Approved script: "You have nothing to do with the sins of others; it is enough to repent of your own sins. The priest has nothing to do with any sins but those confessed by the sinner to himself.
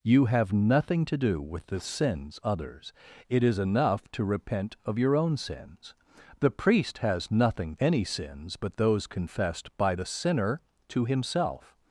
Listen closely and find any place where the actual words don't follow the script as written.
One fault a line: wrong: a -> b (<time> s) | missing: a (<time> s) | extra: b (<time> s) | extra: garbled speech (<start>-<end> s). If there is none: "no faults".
missing: of (2.4 s)
missing: to do with (7.8 s)